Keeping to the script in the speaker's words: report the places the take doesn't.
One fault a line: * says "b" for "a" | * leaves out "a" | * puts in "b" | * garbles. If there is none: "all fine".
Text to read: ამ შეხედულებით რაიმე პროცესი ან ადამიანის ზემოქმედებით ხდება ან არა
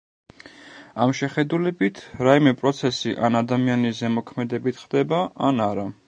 all fine